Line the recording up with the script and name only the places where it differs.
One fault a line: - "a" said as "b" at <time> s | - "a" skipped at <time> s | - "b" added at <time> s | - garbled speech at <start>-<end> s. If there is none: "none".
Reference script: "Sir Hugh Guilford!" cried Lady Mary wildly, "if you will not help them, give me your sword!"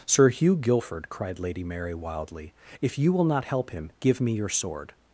- "them" said as "him" at 3.7 s